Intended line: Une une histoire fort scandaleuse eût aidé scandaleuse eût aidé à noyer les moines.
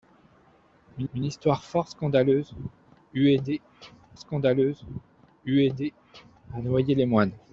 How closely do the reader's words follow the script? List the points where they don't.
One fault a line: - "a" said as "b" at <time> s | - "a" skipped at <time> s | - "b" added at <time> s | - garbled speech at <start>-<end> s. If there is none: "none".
none